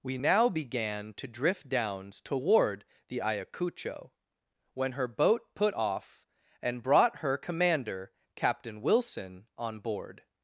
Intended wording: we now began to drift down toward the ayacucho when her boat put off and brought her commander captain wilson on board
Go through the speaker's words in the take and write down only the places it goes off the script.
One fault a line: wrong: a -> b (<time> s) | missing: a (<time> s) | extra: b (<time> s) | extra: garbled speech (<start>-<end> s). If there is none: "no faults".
wrong: down -> downs (1.7 s)